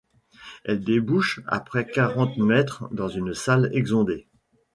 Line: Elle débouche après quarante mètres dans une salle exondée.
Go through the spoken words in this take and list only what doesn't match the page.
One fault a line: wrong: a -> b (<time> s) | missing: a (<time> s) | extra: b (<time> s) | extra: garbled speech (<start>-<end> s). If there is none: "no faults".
no faults